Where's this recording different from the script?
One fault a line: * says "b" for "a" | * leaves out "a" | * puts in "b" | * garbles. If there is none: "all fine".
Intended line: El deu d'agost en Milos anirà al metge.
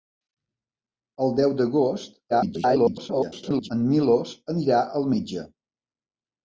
* garbles